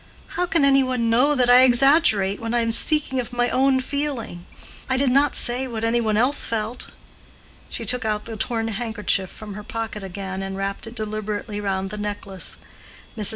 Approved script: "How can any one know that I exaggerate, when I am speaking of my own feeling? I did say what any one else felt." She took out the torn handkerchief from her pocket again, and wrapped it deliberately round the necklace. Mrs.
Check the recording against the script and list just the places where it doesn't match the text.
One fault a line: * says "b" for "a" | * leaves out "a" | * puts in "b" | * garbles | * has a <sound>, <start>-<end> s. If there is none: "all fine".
* puts in "not"